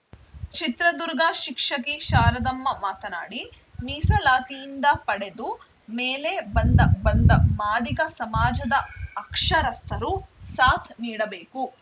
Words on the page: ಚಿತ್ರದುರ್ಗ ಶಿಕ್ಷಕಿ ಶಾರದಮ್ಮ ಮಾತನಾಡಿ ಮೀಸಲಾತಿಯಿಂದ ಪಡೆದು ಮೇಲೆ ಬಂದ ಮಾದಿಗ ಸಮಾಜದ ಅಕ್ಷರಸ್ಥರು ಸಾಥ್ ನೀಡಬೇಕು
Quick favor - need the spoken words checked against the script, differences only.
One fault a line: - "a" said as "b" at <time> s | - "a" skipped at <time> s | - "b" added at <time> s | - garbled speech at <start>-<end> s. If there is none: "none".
- "ಬಂದ" added at 7.0 s